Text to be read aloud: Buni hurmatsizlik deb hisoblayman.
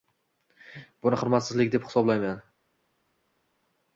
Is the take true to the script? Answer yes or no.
yes